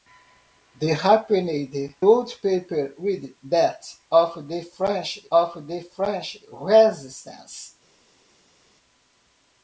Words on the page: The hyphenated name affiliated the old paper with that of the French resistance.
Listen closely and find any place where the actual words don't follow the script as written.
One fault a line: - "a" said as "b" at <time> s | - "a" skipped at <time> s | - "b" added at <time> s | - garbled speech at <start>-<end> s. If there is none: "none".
- "name affiliated the" skipped at 2.0 s
- "of the French" added at 5.3 s